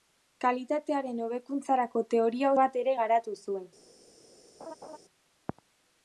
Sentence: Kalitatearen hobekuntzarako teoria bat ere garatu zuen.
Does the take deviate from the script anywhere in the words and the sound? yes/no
yes